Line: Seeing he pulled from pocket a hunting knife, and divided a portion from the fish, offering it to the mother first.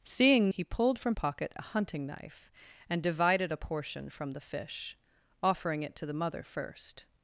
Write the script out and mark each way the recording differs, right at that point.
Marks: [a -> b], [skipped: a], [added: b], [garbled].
Seeing he pulled from pocket a hunting knife, and divided a portion from the fish, offering it to the mother first.